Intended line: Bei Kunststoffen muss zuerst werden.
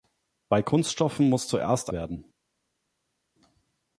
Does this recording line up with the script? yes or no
yes